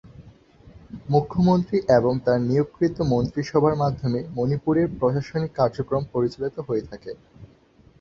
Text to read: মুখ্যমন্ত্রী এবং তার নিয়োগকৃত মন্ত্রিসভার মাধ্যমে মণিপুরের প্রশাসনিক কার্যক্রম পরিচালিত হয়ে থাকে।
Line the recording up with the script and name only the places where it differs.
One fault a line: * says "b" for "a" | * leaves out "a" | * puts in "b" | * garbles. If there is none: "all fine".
all fine